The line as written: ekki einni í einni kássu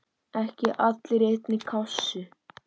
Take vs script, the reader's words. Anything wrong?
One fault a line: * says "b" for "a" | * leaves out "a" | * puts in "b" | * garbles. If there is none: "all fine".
* says "allir" for "einni"